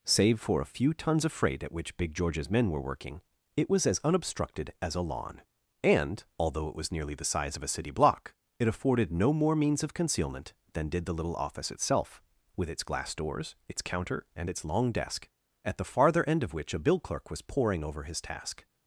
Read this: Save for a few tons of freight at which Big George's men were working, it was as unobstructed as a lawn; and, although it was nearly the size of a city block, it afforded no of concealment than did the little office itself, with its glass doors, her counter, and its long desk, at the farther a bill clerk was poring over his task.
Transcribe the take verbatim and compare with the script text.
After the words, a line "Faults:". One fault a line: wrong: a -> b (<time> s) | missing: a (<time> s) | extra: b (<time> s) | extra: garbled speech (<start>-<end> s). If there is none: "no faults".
Save for a few tons of freight at which Big George's men were working, it was as unobstructed as a lawn; and, although it was nearly the size of a city block, it afforded no more means of concealment than did the little office itself, with its glass doors, its counter, and its long desk, at the farther end of which a bill clerk was poring over his task.
Faults:
extra: more means (9.3 s)
wrong: her -> its (13.7 s)
extra: end of which (16.3 s)